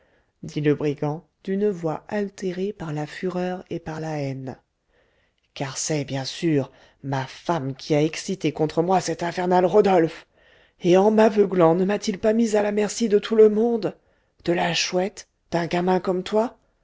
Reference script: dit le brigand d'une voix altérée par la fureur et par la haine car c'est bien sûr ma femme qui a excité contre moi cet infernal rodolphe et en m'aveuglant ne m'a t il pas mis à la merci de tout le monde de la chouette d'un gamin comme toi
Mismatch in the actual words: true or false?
false